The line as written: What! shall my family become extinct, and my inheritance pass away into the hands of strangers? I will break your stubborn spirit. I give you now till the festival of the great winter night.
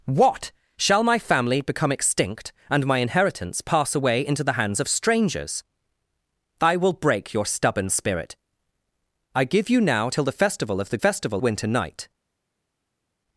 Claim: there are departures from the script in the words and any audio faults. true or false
true